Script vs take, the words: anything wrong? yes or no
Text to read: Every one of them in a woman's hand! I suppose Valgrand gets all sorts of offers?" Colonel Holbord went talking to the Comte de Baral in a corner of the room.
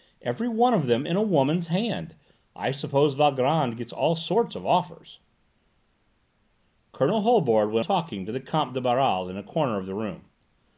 no